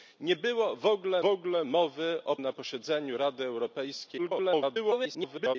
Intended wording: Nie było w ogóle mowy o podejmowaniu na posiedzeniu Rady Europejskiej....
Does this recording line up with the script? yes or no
no